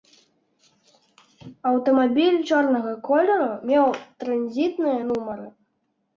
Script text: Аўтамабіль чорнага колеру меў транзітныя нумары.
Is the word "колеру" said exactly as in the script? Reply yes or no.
yes